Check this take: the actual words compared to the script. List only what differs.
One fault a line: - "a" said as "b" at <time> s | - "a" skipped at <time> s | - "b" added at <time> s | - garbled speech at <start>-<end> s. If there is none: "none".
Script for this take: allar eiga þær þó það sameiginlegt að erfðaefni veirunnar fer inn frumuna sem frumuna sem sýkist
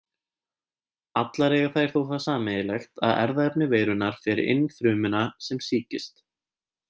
- "frumuna sem" skipped at 5.6 s